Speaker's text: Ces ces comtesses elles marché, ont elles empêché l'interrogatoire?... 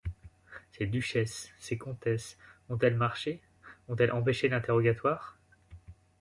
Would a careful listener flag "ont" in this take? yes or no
no